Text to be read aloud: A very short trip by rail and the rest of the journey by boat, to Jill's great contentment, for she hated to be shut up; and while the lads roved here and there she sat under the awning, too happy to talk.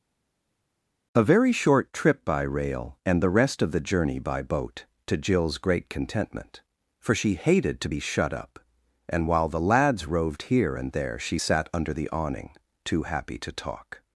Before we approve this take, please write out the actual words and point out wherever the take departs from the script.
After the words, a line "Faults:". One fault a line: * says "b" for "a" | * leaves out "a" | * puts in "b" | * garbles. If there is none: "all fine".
A very short trip by rail and the rest of the journey by boat, to Jill's great contentment, for she hated to be shut up; and while the lads roved here and there she sat under the awning, too happy to talk.
Faults:
all fine